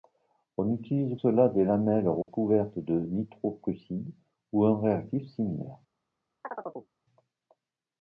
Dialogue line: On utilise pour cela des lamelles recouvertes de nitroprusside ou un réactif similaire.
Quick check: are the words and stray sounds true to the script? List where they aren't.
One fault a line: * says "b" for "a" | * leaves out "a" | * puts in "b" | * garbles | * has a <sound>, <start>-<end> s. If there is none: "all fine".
* leaves out "pour"
* has a dropout, 2.2-2.3 s
* has a chirp, 6.4-6.9 s